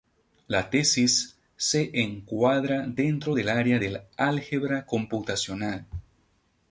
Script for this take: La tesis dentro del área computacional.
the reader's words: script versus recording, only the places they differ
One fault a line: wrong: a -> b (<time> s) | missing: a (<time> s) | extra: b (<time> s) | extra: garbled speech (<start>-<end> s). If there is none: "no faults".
extra: se encuadra (1.6 s)
extra: del álgebra (3.8 s)